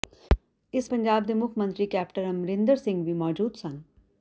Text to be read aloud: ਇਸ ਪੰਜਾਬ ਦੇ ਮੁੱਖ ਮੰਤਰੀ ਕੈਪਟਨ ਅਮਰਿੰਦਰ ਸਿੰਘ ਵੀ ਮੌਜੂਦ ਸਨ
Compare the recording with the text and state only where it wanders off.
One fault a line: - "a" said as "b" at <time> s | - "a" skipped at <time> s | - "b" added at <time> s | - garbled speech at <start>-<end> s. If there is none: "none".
none